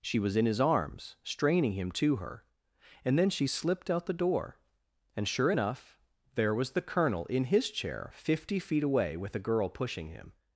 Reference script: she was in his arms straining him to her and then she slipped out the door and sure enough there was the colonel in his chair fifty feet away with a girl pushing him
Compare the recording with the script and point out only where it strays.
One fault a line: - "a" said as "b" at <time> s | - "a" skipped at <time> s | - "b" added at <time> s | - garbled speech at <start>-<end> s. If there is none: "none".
none